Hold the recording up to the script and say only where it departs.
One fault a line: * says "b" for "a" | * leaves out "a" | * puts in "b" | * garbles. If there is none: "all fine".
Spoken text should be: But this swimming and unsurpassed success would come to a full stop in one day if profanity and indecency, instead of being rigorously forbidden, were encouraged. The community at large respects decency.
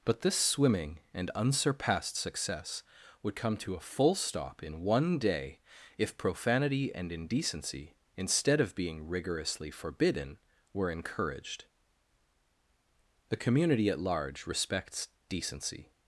all fine